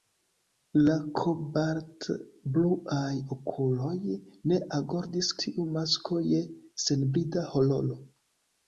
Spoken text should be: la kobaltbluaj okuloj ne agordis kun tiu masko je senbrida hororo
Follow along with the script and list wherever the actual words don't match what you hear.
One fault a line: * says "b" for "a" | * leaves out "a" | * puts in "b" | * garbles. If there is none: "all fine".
* leaves out "kun"